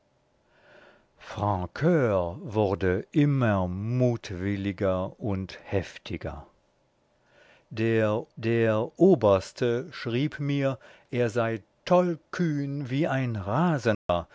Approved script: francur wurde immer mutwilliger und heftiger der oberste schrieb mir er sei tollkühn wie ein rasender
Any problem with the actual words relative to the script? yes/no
yes